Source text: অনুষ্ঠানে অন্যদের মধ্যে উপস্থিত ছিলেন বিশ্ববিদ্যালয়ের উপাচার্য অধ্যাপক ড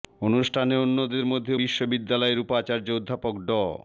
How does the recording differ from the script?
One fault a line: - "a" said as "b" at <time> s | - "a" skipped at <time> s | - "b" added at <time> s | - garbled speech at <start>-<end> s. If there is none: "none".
- "উপস্থিত ছিলেন" skipped at 1.5 s